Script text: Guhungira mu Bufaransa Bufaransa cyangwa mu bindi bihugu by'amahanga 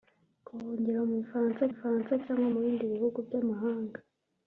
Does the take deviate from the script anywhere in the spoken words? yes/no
no